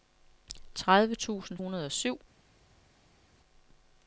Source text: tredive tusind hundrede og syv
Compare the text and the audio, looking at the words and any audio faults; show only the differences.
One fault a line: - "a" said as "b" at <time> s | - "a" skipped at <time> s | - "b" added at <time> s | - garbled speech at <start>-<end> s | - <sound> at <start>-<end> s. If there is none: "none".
none